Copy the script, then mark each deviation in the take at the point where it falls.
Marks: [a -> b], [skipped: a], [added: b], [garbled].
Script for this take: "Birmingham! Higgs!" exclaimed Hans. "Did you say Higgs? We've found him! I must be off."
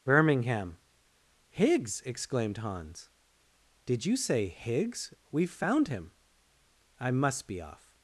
"Birmingham! Higgs!" exclaimed Hans. "Did you say Higgs? We've found him! I must be off."